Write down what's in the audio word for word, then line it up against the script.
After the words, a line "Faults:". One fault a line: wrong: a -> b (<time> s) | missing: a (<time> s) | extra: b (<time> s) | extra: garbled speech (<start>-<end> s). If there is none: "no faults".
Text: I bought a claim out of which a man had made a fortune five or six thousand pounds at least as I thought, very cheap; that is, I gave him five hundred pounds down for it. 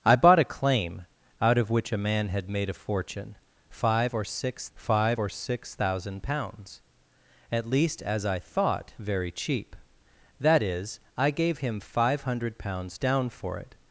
I bought a claim out of which a man had made a fortune five or six five or six thousand pounds at least as I thought, very cheap; that is, I gave him five hundred pounds down for it.
Faults:
extra: five or six (4.7 s)